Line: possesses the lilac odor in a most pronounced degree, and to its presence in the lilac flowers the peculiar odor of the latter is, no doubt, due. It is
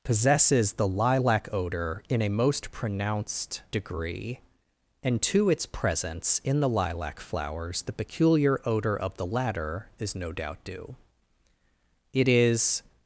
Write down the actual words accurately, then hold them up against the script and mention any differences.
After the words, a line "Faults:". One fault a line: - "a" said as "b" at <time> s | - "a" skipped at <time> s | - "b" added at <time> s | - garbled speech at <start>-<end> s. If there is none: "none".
possesses the lilac odor in a most pronounced degree, and to its presence in the lilac flowers the peculiar odor of the latter is, no doubt, due. It is
Faults:
none